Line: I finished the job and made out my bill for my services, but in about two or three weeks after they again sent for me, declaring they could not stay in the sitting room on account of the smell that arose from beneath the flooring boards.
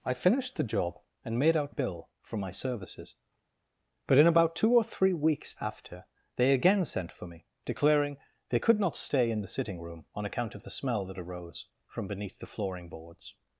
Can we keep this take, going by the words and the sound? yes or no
no